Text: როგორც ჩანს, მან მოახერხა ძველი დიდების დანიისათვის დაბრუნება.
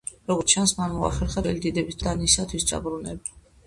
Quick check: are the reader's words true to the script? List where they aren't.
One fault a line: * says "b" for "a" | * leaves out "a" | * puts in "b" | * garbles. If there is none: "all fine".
all fine